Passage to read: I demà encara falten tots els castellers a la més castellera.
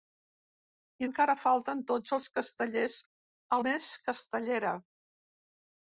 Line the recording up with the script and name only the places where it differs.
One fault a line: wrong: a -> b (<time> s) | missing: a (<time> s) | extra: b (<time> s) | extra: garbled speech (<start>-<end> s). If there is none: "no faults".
missing: demà (1.1 s)
missing: la (3.6 s)